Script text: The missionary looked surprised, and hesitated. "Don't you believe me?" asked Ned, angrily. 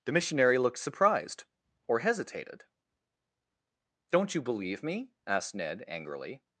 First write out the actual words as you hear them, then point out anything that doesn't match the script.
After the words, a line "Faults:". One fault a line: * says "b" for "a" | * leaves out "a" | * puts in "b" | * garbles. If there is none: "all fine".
The missionary looked surprised, or hesitated. "Don't you believe me?" asked Ned, angrily.
Faults:
* says "or" for "and"